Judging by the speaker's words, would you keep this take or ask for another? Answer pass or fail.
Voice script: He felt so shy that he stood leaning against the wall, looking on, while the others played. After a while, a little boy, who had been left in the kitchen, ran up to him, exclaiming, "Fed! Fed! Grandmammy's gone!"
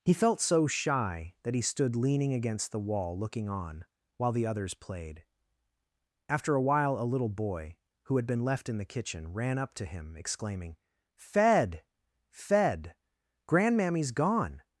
pass